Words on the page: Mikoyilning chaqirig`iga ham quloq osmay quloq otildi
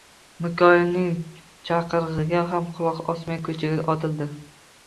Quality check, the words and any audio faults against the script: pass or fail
fail